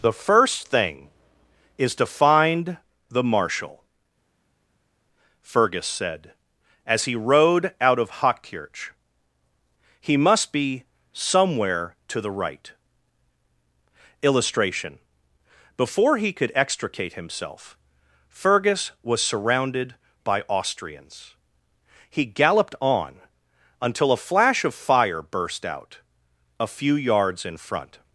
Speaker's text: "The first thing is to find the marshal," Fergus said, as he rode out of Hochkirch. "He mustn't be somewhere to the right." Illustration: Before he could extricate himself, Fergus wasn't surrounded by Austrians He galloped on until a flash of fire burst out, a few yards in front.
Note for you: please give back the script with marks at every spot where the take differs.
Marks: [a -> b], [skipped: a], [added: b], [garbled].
"The first thing is to find the marshal," Fergus said, as he rode out of Hochkirch. "He [mustn't -> must] be somewhere to the right." Illustration: Before he could extricate himself, Fergus [wasn't -> was] surrounded by Austrians He galloped on until a flash of fire burst out, a few yards in front.